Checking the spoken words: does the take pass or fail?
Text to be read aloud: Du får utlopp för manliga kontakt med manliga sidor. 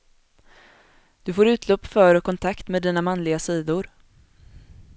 fail